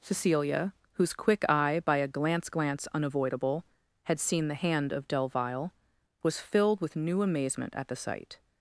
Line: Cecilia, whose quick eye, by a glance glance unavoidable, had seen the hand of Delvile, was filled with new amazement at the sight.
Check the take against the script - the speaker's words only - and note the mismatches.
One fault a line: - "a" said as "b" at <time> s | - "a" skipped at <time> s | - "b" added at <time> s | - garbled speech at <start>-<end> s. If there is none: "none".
none